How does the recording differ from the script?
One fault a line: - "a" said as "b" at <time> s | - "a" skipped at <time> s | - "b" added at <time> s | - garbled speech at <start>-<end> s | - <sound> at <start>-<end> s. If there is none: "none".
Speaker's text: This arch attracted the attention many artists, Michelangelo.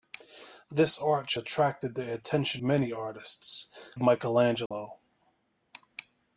- dropout at 4.7-4.7 s